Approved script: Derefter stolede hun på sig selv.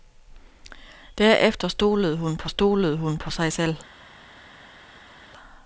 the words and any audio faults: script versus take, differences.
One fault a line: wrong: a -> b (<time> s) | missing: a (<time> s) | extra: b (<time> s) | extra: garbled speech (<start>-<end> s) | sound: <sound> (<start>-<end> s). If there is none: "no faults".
extra: stolede hun på (2.5 s)